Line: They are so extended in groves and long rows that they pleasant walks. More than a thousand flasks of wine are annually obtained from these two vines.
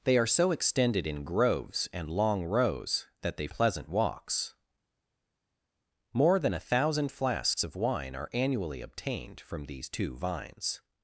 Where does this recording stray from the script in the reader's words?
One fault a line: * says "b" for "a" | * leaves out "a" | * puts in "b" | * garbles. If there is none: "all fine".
all fine